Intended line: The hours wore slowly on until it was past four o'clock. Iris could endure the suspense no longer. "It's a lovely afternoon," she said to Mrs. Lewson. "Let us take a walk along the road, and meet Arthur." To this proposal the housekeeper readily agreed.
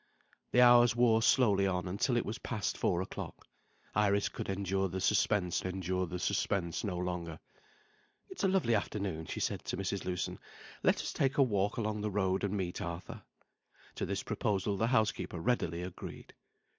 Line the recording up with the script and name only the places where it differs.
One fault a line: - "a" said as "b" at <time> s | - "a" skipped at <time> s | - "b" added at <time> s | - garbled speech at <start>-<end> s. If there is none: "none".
- "endure the suspense" added at 5.6 s